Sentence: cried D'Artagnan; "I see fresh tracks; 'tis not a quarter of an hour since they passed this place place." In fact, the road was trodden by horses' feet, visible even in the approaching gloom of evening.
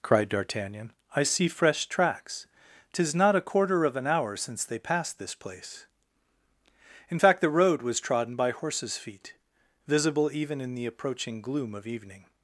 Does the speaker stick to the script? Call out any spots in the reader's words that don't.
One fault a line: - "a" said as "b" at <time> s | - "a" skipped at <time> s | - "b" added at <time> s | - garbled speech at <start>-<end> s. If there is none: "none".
- "place" skipped at 5.8 s